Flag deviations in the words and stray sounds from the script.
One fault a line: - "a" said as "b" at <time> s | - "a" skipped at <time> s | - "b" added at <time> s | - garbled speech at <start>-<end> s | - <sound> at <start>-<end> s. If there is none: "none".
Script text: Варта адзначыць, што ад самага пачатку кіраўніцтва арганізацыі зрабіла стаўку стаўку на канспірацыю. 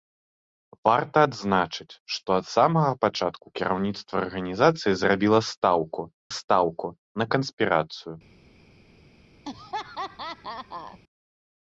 - laugh at 9.5-11.0 s